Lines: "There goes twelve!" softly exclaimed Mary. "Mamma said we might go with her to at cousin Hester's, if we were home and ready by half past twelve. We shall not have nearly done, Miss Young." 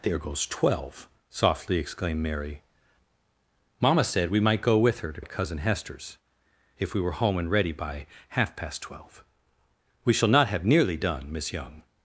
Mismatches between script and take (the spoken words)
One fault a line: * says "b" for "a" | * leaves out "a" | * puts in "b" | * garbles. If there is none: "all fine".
all fine